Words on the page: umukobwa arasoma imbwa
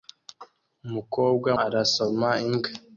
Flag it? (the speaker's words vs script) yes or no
no